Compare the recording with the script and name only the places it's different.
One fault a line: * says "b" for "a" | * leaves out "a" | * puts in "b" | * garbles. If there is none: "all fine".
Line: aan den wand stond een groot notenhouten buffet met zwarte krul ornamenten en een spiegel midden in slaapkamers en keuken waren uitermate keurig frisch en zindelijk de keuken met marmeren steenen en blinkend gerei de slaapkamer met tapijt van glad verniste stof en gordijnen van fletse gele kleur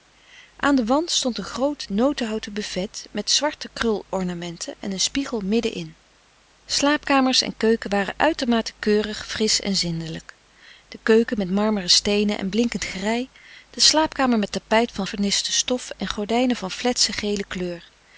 * leaves out "glad"